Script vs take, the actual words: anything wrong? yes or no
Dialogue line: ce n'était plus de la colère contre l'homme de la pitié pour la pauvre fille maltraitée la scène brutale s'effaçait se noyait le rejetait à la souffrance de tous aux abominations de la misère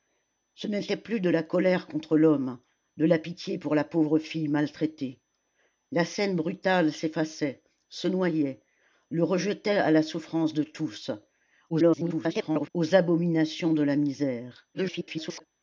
yes